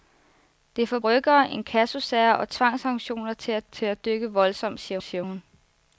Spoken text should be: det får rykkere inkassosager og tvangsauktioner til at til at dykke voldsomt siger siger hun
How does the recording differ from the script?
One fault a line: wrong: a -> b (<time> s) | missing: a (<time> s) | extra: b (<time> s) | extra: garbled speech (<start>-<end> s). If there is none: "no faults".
no faults